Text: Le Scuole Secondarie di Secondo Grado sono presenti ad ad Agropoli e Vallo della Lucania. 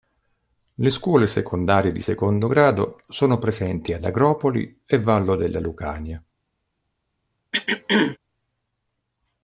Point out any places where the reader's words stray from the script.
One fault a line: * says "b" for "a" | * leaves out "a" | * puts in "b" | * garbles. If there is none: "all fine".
* leaves out "ad"